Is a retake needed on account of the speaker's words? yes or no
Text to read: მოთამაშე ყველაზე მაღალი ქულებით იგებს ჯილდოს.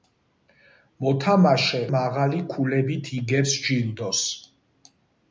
yes